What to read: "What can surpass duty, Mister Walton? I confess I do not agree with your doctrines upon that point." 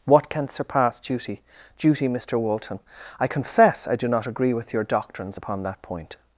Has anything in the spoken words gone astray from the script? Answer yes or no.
yes